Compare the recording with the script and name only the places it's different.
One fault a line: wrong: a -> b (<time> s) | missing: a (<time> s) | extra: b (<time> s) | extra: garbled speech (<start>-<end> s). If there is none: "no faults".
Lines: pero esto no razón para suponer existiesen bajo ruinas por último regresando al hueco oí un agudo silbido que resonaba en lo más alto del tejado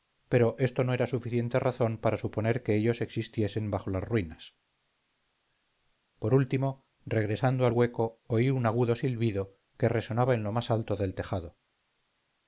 extra: era suficiente (0.9 s)
extra: que ellos (2.6 s)
extra: las (3.9 s)